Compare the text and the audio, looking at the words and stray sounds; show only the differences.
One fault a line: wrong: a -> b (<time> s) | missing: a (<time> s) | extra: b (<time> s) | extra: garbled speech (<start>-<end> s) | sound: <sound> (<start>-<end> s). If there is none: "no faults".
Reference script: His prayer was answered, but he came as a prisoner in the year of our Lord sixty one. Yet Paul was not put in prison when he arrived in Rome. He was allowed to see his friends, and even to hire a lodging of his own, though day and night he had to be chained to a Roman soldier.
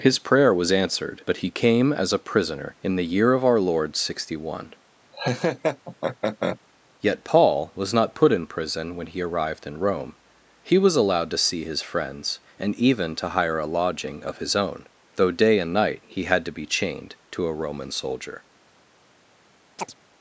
sound: laugh (5.1-6.6 s)
sound: chirp (19.8-19.9 s)